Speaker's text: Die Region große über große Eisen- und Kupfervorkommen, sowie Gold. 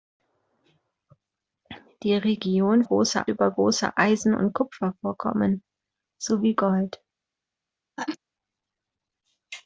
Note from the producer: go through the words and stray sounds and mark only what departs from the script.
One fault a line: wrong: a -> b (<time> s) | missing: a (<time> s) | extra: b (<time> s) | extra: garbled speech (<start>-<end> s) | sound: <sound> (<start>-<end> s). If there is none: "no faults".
sound: sneeze (8.0-8.2 s)